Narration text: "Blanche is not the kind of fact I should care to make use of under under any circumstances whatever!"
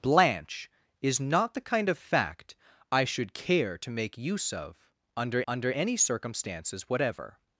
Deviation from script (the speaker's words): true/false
false